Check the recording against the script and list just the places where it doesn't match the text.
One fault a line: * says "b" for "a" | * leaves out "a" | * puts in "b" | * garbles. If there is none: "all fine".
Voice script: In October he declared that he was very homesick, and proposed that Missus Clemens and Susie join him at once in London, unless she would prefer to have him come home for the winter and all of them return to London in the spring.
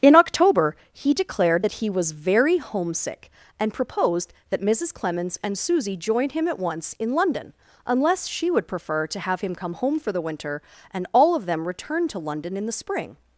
all fine